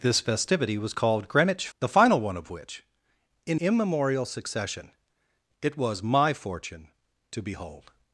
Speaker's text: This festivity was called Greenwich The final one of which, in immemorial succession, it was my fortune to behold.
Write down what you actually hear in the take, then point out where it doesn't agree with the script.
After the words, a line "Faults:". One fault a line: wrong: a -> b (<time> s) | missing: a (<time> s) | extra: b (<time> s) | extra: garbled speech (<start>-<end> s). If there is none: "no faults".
This festivity was called Greenwich The final one of which, in immemorial succession, it was my fortune to behold.
Faults:
no faults